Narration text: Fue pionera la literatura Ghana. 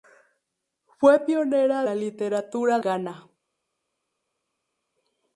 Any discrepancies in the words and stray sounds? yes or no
no